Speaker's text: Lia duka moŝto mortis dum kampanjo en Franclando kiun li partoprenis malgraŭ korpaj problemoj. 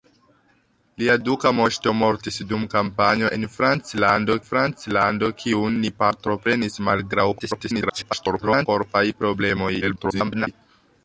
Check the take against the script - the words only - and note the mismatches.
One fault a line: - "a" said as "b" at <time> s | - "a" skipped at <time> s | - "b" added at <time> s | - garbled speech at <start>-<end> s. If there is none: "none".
- "Franclando" added at 4.5 s
- garbled speech at 7.4-8.7 s
- garbled speech at 9.8-10.5 s